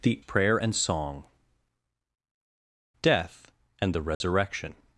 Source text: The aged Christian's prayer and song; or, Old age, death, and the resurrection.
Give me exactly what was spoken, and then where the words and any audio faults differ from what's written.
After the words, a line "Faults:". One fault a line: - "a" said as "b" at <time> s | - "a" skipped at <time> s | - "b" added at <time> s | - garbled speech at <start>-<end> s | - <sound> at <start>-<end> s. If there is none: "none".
The prayer and song; death, and the resurrection.
Faults:
- "aged Christian's" skipped at 0.2 s
- "or Old age" skipped at 1.2 s
- dropout at 4.1-4.2 s